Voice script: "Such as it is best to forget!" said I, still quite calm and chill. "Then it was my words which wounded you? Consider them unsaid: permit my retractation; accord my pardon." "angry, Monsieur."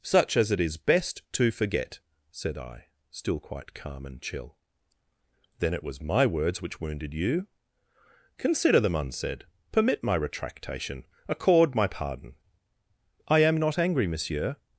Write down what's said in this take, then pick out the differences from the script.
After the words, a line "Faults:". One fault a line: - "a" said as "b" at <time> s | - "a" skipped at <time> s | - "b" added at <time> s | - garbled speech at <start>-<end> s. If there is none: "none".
"Such as it is best to forget!" said I, still quite calm and chill. "Then it was my words which wounded you? Consider them unsaid: permit my retractation; accord my pardon." "I am not angry, Monsieur."
Faults:
- "I am not" added at 13.3 s